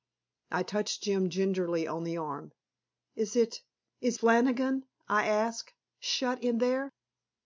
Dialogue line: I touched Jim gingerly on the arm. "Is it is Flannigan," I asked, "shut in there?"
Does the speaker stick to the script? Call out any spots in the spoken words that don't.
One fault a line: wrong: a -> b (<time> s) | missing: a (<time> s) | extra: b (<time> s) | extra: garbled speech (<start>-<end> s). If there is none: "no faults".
no faults